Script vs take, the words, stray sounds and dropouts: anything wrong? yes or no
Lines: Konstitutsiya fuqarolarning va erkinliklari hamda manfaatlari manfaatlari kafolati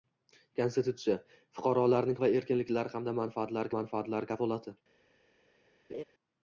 yes